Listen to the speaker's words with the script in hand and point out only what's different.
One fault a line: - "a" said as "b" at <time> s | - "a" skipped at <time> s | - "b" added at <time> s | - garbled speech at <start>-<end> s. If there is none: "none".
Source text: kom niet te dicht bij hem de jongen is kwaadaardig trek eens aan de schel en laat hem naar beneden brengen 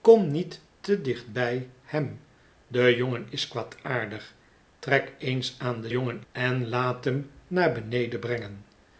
- "schel" said as "jongen" at 5.9 s